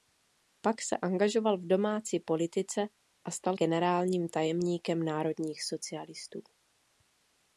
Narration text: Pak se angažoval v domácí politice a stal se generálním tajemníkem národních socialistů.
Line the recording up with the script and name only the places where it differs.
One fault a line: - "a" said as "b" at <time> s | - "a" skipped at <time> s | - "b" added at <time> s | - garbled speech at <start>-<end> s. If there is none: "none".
- "se" skipped at 3.6 s